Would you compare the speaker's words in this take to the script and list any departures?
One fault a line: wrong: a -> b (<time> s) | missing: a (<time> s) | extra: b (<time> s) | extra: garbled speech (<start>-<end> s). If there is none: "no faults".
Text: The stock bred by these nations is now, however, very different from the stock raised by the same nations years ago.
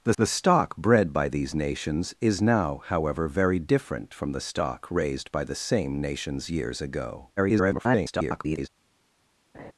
extra: the (0.2 s)
extra: garbled speech (7.4-8.7 s)